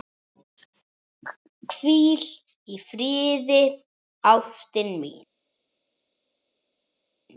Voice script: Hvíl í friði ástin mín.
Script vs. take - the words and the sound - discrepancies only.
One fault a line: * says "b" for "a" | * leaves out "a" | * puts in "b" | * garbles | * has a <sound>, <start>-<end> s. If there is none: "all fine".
all fine